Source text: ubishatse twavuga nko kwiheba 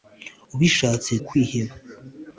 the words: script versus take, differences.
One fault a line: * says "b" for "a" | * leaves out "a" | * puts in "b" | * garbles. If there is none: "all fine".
* leaves out "twavuga nko"